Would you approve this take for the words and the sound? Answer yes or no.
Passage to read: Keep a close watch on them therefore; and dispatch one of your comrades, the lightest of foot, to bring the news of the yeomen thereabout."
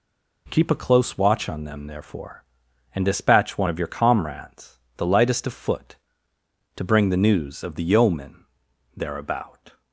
yes